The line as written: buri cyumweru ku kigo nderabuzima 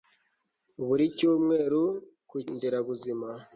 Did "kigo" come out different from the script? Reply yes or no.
yes